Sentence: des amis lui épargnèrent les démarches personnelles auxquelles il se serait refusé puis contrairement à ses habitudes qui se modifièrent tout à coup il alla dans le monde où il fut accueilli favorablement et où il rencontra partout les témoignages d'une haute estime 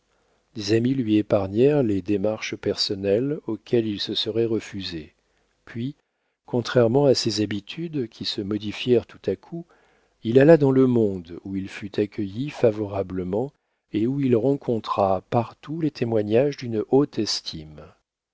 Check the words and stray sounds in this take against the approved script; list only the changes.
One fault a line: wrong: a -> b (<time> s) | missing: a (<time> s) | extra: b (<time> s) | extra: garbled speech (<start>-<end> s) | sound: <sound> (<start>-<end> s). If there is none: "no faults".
no faults